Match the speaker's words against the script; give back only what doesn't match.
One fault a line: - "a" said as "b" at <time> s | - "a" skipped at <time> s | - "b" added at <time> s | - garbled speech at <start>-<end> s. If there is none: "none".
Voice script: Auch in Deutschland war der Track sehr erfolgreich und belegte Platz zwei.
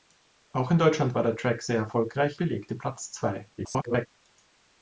- "und" skipped at 2.4 s
- garbled speech at 3.6-4.1 s